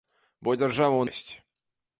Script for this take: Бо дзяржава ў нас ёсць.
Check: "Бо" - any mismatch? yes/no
no